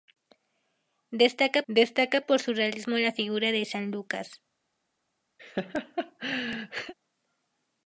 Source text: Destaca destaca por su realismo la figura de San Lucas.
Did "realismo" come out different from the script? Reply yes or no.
no